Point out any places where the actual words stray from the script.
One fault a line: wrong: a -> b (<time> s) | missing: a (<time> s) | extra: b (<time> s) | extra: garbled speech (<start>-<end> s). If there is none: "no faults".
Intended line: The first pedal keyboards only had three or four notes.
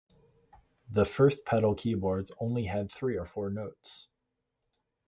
no faults